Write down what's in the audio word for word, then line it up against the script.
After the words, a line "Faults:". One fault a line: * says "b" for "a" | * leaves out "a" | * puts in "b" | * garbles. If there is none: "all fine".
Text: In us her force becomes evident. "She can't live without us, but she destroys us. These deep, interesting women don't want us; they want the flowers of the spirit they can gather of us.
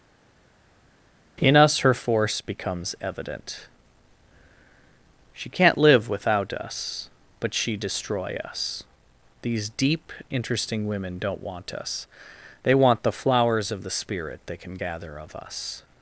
In us her force becomes evident. "She can't live without us, but she destroy us. These deep, interesting women don't want us; they want the flowers of the spirit they can gather of us.
Faults:
* says "destroy" for "destroys"